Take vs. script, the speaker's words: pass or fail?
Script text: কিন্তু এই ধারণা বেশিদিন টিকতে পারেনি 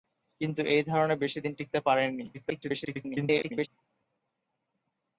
fail